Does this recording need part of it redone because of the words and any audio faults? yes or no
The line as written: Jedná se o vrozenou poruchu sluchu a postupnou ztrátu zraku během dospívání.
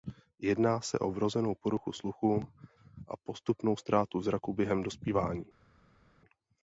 no